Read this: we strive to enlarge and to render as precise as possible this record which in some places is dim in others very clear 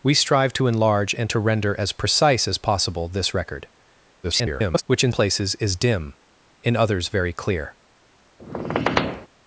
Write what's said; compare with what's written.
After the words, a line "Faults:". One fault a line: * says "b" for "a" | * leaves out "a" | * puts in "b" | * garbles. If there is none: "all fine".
we strive to enlarge and to render as precise as possible this record [garbled] which in places is dim in others very clear
Faults:
* garbles
* leaves out "some"